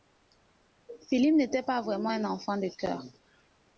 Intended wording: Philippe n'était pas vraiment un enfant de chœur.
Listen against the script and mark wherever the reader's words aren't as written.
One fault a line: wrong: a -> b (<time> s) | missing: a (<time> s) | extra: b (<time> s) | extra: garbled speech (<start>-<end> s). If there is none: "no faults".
no faults